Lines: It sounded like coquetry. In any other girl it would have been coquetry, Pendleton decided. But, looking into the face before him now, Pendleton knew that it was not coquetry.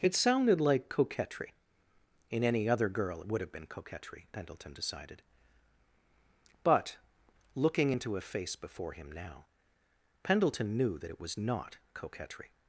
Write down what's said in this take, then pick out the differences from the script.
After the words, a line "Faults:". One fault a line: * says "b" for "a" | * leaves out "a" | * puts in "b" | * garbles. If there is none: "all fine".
It sounded like coquetry. In any other girl it would have been coquetry, Pendleton decided. But, looking into a face before him now, Pendleton knew that it was not coquetry.
Faults:
* says "a" for "the"